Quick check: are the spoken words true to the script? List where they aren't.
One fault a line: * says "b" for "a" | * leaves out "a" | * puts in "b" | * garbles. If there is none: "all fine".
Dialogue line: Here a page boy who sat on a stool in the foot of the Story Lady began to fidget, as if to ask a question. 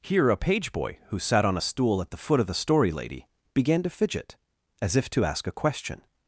* says "at" for "in"